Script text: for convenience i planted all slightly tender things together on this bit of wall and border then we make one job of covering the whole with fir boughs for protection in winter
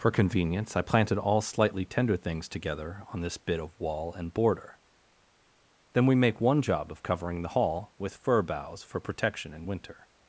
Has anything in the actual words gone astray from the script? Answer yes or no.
yes